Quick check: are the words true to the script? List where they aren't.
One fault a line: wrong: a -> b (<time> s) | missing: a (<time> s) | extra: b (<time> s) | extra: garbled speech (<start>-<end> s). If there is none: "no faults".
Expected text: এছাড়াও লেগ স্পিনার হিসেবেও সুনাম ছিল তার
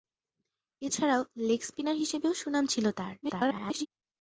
extra: garbled speech (3.2-3.9 s)